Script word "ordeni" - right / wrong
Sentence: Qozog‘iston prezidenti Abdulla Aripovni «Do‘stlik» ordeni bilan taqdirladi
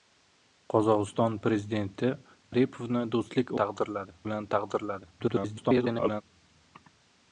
wrong